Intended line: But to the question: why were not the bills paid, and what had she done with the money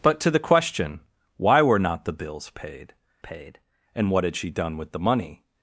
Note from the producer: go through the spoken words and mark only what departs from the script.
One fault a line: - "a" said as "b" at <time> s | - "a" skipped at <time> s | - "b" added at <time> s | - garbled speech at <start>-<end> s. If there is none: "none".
- "paid" added at 3.2 s